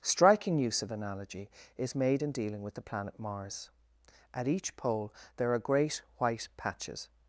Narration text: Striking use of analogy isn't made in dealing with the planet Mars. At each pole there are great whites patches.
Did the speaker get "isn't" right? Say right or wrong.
wrong